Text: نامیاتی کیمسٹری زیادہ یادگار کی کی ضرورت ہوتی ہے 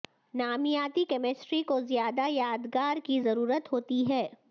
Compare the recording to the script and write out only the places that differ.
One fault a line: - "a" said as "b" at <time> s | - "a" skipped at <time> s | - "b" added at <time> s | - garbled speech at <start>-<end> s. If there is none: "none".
- "کو" added at 1.6 s
- "کی" skipped at 3.2 s